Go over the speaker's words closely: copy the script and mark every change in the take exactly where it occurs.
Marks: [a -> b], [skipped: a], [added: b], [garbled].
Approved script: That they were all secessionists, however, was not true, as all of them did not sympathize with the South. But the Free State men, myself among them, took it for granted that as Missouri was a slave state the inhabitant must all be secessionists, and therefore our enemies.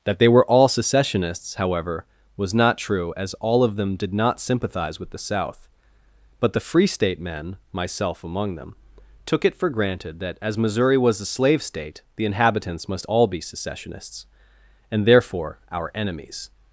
That they were all secessionists, however, was not true, as all of them did not sympathize with the South. But the Free State men, myself among them, took it for granted that as Missouri was a slave state the [inhabitant -> inhabitants] must all be secessionists, and therefore our enemies.